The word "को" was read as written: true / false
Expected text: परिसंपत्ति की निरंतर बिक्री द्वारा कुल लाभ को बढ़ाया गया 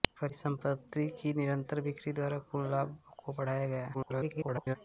true